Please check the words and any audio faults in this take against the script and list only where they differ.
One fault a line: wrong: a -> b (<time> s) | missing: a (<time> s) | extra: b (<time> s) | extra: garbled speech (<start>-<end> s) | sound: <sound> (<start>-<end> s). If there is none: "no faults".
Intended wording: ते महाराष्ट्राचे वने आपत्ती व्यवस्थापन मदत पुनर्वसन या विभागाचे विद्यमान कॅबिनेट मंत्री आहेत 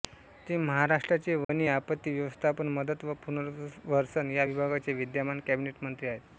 sound: dropout (1.4-1.5 s)
extra: व (3.0 s)